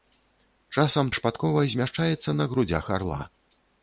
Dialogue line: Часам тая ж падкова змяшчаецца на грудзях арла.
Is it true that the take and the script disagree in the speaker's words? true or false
true